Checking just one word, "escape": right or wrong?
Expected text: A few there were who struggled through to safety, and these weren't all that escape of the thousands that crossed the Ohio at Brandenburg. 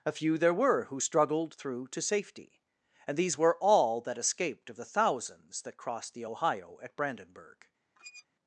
wrong